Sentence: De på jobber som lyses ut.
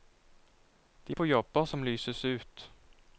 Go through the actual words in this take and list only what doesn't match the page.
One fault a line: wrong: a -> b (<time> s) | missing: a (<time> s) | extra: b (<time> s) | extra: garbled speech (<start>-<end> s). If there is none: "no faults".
no faults